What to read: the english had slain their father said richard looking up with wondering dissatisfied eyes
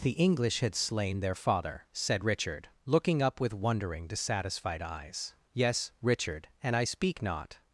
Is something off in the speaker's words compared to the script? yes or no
yes